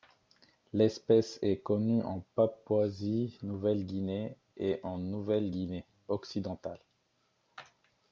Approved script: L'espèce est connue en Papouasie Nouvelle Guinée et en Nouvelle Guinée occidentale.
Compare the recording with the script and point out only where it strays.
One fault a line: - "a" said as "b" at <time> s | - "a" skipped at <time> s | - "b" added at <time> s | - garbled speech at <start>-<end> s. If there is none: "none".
none